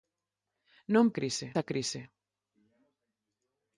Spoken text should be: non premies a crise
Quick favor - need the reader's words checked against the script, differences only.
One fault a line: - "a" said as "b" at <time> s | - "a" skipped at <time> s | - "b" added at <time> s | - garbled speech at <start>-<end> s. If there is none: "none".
- "premies" said as "crise" at 1.2 s